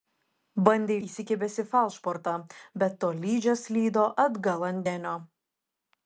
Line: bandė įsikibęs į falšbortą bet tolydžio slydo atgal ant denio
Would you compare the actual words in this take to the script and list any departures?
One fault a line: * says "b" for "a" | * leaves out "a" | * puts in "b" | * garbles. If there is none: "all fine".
all fine